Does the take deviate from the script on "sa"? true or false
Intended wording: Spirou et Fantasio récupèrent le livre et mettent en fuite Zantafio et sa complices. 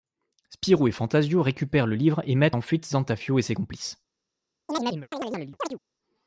true